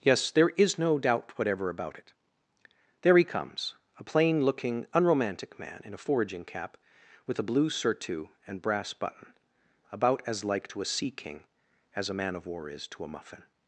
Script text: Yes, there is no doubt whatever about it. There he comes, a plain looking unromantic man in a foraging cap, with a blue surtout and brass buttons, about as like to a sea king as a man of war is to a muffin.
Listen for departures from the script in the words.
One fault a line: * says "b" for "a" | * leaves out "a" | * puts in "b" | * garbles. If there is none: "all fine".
* says "button" for "buttons"